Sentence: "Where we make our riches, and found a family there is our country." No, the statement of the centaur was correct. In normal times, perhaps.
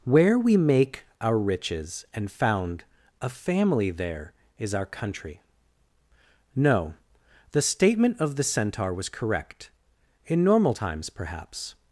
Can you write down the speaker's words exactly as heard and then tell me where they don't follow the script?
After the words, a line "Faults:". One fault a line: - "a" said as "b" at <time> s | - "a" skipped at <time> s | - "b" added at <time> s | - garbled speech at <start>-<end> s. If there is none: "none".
"Where we make our riches, and found a family there is our country." No, the statement of the centaur was correct. In normal times, perhaps.
Faults:
none